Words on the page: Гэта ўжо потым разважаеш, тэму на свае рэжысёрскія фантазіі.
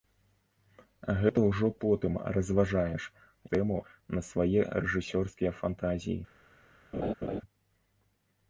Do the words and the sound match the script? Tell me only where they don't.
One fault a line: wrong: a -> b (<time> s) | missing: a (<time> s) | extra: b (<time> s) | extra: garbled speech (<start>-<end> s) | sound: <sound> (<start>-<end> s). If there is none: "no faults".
sound: laugh (6.9-7.4 s)